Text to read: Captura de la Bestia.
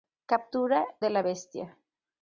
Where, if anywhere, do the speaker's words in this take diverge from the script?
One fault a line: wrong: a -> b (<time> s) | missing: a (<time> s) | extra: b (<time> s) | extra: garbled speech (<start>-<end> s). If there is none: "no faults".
no faults